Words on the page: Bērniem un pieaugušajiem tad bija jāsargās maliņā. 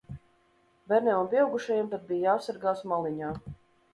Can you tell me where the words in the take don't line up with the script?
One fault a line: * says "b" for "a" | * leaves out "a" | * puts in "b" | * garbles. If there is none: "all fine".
all fine